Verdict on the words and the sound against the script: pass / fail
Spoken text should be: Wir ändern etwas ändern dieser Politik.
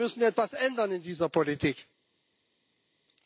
fail